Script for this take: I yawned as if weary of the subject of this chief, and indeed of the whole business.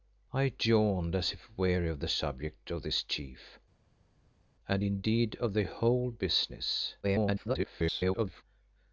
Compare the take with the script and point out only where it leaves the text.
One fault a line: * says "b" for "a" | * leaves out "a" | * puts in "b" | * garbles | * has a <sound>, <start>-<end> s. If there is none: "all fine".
* garbles